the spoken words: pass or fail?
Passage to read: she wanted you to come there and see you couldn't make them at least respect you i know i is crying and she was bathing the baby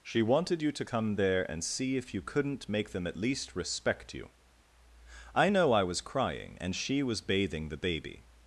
fail